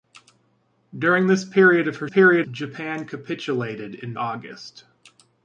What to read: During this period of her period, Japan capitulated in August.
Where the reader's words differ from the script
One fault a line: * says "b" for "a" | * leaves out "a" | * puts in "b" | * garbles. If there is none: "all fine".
all fine